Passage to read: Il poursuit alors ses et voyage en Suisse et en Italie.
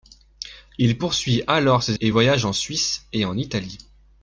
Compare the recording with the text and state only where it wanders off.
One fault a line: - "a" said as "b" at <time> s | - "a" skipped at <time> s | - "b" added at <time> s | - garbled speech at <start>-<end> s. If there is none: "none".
none